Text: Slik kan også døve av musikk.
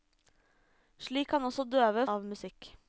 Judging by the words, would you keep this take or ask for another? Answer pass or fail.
pass